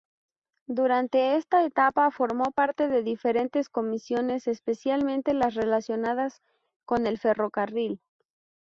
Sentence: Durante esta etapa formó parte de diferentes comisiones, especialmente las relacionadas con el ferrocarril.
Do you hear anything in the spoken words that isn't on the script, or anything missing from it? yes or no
no